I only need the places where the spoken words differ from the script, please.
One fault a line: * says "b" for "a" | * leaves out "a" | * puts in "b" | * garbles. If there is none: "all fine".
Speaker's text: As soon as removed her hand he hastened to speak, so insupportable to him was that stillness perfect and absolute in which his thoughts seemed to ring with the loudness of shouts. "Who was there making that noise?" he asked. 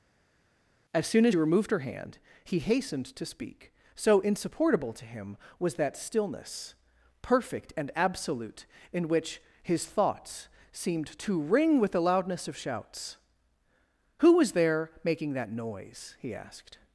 all fine